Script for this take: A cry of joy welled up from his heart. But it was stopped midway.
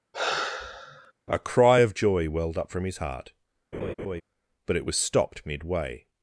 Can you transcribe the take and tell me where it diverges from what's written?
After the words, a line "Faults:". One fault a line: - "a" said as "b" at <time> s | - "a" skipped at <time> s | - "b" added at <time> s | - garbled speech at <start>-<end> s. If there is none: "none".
A cry of joy welled up from his heart. But it was stopped midway.
Faults:
none